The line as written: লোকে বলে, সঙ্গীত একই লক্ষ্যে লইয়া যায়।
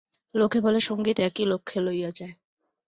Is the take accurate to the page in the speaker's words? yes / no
yes